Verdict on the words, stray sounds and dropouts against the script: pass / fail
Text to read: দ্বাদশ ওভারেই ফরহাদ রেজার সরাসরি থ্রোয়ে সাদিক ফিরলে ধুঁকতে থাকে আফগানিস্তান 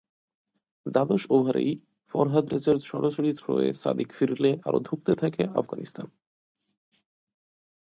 fail